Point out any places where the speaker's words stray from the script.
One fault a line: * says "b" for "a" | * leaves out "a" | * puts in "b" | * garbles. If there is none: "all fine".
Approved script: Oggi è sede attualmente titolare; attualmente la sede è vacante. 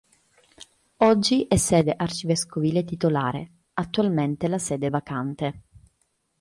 * says "arcivescovile" for "attualmente"